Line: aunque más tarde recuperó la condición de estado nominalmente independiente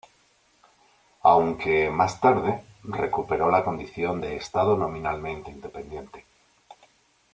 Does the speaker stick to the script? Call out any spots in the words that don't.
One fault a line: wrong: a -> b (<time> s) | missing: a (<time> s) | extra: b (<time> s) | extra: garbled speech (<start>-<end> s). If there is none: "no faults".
no faults